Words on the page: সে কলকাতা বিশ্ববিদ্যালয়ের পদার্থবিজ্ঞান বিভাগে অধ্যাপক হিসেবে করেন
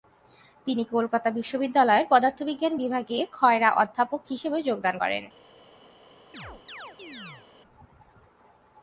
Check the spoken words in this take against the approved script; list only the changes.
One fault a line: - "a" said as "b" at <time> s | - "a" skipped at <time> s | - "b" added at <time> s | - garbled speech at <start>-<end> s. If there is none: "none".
- "সে" said as "তিনি" at 0.7 s
- "খয়রা" added at 3.3 s
- "যোগদান" added at 4.6 s